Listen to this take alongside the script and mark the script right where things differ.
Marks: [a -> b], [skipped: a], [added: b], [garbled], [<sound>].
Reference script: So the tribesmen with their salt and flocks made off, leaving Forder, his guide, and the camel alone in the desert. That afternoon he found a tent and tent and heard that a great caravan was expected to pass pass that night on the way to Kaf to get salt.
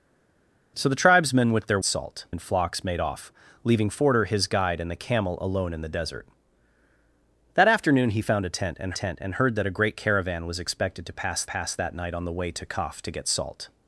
So the tribesmen with their salt and flocks made off, leaving Forder, his guide, and the camel alone in the desert. That afternoon he found a tent and tent and heard that a great caravan was expected to pass pass that night on the way to Kaf to get salt.